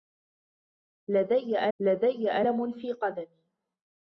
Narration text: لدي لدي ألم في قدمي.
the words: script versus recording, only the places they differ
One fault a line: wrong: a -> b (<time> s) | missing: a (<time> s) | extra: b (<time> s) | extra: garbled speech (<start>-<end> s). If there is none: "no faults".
no faults